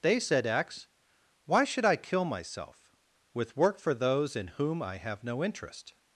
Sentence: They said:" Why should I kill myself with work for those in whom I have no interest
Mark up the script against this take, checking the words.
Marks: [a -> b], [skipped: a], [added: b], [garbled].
They said:" [added: x] Why should I kill myself with work for those in whom I have no interest